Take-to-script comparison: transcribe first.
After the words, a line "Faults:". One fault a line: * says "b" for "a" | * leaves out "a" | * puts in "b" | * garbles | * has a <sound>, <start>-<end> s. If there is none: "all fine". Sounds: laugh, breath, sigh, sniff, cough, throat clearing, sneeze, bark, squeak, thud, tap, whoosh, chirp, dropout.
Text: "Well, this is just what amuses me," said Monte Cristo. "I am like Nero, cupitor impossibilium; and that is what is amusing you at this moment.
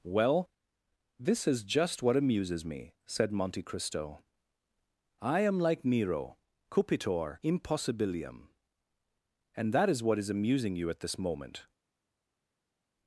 "Well, this is just what amuses me," said Monte Cristo. "I am like Nero, cupitor impossibilium; and that is what is amusing you at this moment.
Faults:
all fine